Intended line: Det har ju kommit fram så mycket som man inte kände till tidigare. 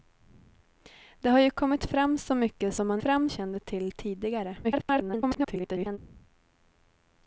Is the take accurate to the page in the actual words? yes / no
no